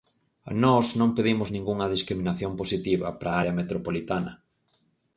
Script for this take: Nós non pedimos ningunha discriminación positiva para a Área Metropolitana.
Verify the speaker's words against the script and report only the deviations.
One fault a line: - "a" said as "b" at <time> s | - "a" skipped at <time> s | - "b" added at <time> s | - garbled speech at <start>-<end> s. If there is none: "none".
none